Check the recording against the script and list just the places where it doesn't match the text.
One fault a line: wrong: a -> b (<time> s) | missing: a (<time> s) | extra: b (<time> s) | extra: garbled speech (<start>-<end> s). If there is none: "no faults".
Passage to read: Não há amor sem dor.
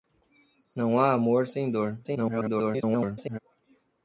extra: garbled speech (2.0-3.4 s)